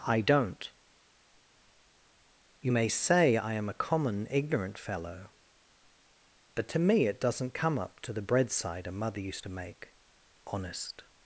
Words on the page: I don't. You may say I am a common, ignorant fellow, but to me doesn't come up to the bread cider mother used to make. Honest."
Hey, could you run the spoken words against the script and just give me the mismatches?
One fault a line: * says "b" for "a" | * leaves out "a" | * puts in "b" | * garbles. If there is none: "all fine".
* puts in "it"